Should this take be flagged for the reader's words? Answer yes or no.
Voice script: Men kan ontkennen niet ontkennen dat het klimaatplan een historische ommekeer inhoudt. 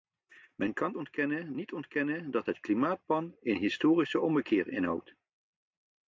no